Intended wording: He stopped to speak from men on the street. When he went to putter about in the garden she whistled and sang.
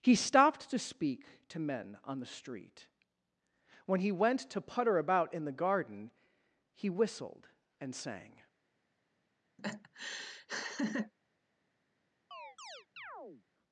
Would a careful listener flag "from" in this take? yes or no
yes